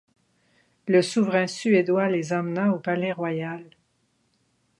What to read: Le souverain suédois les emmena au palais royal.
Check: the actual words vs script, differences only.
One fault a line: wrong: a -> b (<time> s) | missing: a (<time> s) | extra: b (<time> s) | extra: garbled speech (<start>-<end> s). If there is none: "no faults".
no faults